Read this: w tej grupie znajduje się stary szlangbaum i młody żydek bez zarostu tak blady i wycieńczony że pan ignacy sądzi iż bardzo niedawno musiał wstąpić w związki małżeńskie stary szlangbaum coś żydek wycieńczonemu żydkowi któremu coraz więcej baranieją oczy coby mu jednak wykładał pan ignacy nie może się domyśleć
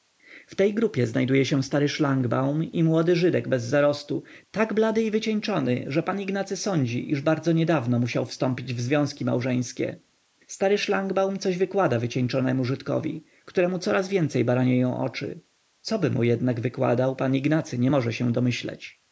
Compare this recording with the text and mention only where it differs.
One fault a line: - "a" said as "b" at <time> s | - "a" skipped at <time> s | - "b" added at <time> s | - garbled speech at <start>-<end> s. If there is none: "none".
- "żydek" said as "wykłada" at 11.6 s